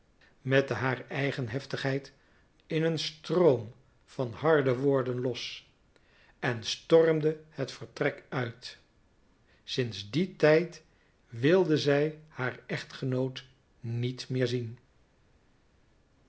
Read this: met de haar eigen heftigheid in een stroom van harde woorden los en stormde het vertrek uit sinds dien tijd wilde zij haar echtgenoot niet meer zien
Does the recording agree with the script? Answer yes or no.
yes